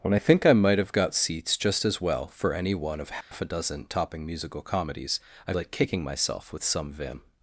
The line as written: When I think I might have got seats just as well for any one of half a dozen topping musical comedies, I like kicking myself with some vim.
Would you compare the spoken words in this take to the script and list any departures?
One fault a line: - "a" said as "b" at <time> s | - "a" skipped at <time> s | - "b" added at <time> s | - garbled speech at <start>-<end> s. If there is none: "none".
none